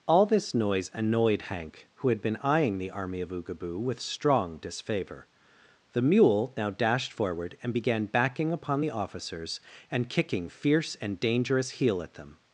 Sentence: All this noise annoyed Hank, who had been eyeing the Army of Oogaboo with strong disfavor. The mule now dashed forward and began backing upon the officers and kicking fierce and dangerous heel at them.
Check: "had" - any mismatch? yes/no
no